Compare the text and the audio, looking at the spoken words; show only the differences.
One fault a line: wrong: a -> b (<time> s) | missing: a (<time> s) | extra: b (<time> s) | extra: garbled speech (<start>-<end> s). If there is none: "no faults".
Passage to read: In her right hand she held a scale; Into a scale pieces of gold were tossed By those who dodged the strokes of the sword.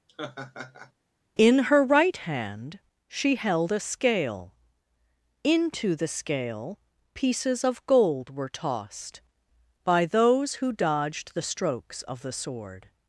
wrong: a -> the (6.0 s)